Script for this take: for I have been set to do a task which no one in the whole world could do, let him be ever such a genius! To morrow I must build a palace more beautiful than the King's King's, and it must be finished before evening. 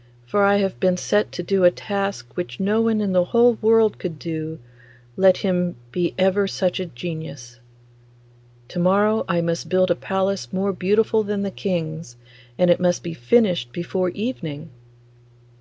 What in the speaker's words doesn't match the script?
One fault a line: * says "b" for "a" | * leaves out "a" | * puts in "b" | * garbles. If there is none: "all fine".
* leaves out "King's"